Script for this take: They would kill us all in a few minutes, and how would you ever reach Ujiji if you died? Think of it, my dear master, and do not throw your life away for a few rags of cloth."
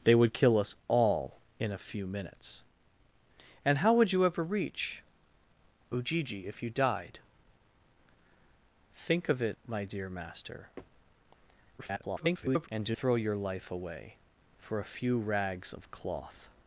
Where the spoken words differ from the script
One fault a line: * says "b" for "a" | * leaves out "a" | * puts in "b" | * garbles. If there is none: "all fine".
* garbles
* leaves out "not"